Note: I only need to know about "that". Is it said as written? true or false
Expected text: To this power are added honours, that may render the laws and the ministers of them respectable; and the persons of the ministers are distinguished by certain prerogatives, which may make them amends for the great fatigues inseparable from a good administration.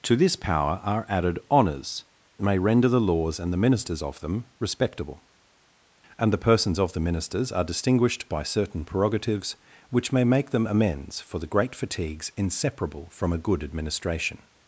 false